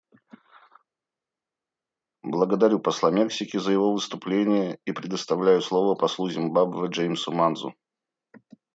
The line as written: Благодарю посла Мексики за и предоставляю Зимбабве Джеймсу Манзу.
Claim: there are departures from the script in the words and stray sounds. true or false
true